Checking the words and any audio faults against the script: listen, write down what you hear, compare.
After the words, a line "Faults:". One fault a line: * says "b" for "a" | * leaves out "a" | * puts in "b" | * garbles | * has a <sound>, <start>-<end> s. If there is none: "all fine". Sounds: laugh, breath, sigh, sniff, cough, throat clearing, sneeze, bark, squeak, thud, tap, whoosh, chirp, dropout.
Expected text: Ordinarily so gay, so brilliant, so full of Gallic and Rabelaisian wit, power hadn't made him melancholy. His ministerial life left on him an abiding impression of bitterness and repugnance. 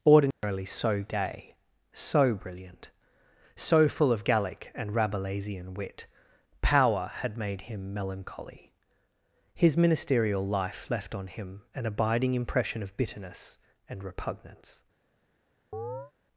Ordinarily so gay, so brilliant, so full of Gallic and Rabelaisian wit, power had made him melancholy. His ministerial life left on him an abiding impression of bitterness and repugnance.
Faults:
* has a dropout, 0.3-0.4 s
* says "had" for "hadn't"
* has a chirp, 15.7-16.1 s